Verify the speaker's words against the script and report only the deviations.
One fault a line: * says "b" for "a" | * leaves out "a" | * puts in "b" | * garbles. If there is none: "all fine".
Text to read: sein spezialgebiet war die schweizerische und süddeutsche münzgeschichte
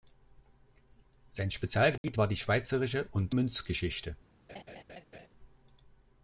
* leaves out "süddeutsche"